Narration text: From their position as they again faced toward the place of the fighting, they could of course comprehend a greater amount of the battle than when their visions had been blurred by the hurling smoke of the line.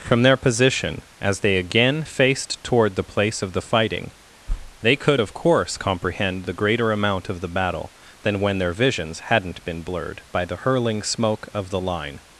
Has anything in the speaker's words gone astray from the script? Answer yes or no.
yes